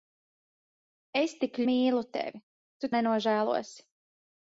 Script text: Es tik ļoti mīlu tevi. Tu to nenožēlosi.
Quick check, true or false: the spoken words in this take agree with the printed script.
false